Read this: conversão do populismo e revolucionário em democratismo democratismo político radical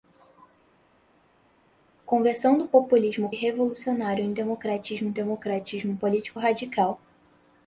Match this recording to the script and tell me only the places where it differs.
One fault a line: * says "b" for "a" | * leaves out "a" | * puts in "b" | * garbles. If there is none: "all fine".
all fine